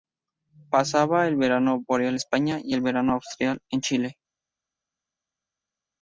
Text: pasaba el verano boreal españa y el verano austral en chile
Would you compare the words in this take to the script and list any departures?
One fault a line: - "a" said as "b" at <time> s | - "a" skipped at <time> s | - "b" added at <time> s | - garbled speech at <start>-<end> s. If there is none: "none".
none